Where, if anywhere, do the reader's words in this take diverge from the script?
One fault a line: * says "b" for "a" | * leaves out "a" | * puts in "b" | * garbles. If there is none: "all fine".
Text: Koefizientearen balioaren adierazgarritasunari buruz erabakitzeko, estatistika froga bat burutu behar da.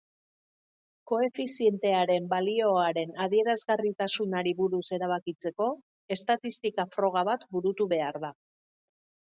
all fine